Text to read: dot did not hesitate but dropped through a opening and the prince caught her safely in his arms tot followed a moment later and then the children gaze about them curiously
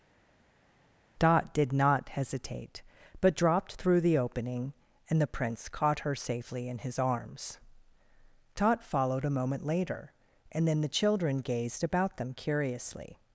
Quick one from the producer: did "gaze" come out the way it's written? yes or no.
no